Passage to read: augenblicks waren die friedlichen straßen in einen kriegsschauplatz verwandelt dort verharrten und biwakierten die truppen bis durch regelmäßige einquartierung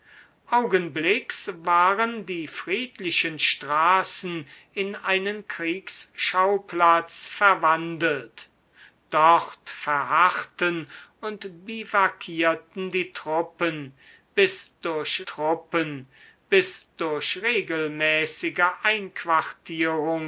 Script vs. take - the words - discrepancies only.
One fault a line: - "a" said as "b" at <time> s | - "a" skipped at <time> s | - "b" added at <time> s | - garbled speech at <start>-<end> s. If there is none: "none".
- "truppen bis durch" added at 15.2 s